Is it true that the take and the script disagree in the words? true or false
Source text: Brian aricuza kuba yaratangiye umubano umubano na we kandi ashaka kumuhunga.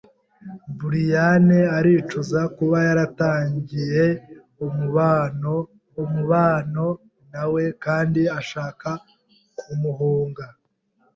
false